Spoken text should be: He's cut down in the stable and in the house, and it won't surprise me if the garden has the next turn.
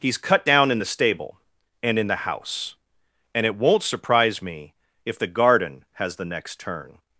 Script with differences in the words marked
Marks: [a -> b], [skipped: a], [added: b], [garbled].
He's cut down in the stable and in the house, and it won't surprise me if the garden has the next turn.